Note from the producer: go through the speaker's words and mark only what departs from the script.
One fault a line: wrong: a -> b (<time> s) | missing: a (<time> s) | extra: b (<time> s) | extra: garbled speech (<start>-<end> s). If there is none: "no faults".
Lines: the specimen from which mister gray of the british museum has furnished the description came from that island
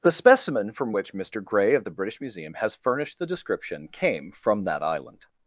no faults